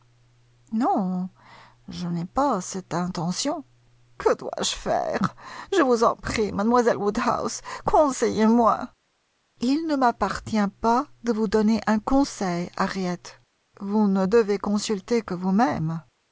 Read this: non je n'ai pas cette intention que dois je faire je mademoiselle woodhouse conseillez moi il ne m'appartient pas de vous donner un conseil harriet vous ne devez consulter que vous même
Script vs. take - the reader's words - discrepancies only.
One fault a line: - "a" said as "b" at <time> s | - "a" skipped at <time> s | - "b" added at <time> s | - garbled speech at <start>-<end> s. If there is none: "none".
- "vous en prie" added at 5.8 s